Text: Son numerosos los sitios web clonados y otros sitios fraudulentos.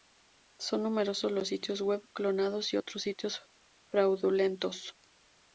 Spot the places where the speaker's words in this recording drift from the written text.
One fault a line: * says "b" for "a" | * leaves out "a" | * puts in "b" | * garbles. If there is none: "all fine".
all fine